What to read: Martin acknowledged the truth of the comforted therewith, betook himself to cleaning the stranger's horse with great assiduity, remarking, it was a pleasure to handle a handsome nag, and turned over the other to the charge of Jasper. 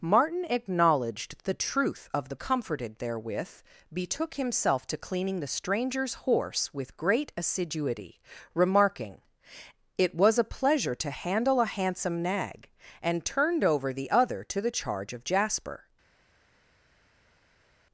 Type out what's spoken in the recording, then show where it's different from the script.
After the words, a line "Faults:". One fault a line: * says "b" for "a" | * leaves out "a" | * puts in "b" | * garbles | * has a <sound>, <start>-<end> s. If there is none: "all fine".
Martin acknowledged the truth of the comforted therewith, betook himself to cleaning the stranger's horse with great assiduity, remarking, it was a pleasure to handle a handsome nag, and turned over the other to the charge of Jasper.
Faults:
all fine